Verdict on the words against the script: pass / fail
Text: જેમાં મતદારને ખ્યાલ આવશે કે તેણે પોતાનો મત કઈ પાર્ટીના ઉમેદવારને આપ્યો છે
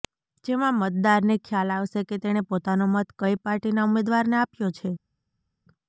pass